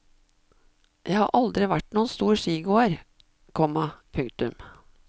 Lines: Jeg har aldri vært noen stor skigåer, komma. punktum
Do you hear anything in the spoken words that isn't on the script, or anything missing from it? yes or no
no